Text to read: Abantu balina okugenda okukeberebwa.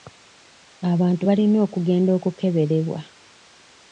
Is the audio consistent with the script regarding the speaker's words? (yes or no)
yes